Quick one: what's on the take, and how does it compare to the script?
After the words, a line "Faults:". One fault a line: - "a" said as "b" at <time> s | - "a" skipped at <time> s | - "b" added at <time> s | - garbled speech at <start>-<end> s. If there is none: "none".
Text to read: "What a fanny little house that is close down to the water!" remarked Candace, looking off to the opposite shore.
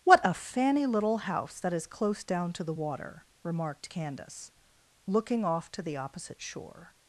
"What a fanny little house that is close down to the water!" remarked Candace, looking off to the opposite shore.
Faults:
none